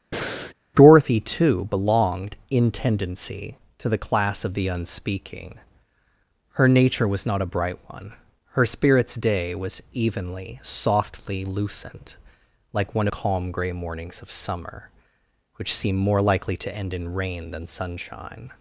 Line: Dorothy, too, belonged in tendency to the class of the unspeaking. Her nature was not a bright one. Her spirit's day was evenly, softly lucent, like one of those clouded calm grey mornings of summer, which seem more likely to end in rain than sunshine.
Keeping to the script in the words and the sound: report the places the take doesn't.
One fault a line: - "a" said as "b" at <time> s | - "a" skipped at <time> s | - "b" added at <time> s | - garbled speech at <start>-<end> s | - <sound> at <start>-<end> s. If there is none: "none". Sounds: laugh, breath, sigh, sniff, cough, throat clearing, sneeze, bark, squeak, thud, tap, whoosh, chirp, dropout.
- breath at 0.1-0.5 s
- "of those clouded" skipped at 13.1 s